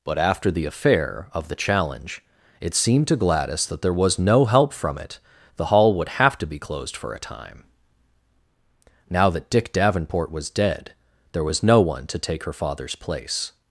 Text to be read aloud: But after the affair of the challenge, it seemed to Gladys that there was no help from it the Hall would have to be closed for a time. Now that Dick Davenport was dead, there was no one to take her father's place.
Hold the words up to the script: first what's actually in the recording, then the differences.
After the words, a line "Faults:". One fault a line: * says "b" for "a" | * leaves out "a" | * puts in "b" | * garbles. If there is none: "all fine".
But after the affair of the challenge, it seemed to Gladys that there was no help from it the Hall would have to be closed for a time. Now that Dick Davenport was dead, there was no one to take her father's place.
Faults:
all fine